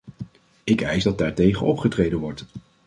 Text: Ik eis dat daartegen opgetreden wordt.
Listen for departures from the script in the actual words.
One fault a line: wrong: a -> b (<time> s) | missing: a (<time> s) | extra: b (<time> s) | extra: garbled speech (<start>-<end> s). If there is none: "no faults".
no faults